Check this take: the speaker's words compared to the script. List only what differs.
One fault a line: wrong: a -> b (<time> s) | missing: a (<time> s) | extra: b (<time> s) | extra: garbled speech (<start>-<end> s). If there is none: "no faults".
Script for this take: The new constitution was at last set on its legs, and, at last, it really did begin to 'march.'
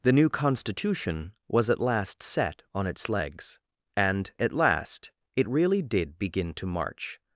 no faults